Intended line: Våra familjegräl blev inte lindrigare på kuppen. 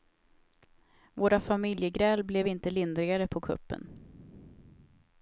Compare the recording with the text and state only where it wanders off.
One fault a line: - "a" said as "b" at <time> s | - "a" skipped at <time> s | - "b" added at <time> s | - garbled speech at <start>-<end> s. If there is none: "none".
none